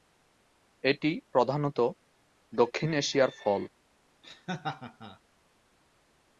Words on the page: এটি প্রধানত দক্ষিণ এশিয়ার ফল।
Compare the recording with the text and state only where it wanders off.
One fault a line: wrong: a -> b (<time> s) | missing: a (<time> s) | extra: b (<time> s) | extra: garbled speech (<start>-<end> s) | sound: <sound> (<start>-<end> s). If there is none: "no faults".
sound: laugh (4.2-5.2 s)